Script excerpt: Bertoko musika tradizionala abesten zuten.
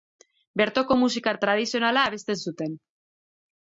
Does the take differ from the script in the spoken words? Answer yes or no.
no